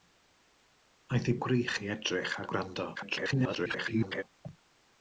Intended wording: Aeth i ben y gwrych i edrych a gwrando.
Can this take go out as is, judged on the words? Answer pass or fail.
fail